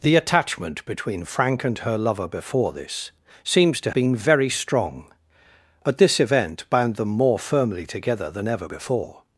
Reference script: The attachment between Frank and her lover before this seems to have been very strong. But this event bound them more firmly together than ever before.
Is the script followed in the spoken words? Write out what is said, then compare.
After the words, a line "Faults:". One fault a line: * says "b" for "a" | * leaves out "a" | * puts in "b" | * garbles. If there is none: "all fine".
The attachment between Frank and her lover before this seems to been very strong. But this event bound them more firmly together than ever before.
Faults:
* leaves out "have"